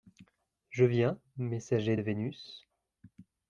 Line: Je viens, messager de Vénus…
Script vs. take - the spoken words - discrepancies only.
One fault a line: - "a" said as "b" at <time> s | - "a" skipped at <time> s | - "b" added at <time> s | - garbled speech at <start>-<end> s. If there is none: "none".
none